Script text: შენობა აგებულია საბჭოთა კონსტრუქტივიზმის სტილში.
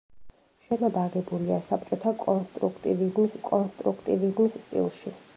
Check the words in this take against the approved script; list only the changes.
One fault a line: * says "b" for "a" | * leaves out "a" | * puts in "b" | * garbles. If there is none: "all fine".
* puts in "კონსტრუქტივიზმის"